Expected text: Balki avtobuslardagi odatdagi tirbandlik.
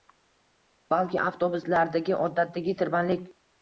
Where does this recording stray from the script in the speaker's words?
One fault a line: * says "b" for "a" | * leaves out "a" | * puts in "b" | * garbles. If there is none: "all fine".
all fine